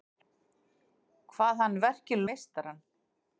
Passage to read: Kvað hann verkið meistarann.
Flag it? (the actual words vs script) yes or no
no